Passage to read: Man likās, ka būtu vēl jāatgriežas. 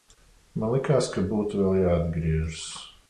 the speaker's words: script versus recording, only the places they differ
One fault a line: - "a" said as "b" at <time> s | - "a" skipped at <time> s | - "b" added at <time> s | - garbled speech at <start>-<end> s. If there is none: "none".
none